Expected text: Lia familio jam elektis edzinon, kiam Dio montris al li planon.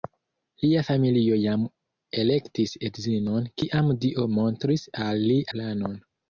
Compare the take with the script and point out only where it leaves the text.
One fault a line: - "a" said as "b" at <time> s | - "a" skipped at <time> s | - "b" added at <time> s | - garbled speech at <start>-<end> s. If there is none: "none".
none